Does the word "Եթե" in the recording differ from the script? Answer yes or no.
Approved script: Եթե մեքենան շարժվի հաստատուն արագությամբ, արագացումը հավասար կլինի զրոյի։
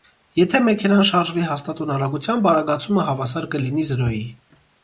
no